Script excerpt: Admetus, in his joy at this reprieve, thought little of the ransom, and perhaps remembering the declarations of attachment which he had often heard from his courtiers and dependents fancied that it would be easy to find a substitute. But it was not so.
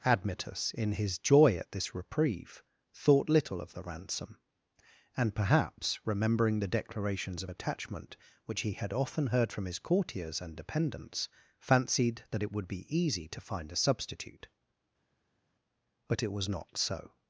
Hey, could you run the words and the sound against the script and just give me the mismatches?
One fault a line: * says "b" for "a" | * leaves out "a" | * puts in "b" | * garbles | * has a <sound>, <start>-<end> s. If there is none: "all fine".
all fine